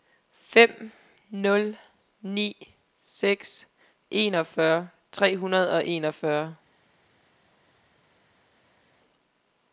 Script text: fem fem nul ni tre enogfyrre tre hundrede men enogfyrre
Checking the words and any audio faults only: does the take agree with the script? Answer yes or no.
no